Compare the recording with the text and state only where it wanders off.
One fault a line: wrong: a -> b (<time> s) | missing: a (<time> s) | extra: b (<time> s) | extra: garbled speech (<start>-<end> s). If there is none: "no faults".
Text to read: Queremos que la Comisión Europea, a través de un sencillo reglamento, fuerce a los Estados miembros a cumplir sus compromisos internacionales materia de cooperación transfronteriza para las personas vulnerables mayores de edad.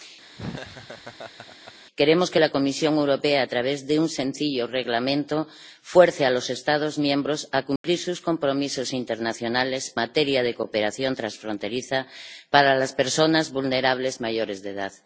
no faults